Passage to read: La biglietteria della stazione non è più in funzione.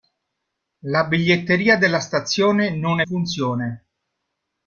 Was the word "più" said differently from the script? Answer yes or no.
yes